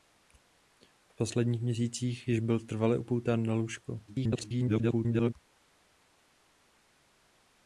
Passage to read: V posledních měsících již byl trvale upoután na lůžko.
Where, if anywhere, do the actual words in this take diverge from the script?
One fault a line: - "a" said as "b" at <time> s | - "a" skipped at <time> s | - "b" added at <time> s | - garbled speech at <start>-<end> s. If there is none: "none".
- garbled speech at 4.1-5.3 s